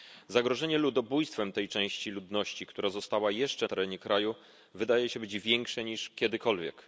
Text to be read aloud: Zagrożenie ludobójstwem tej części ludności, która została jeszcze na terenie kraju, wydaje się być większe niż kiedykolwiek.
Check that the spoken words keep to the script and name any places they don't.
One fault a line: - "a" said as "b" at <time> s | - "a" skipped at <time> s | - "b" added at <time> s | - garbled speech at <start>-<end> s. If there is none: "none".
- "na" skipped at 3.7 s